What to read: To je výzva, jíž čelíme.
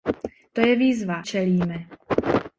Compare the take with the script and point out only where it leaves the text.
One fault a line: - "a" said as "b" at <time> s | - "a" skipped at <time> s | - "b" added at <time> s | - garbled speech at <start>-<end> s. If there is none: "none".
- "jíž" skipped at 1.2 s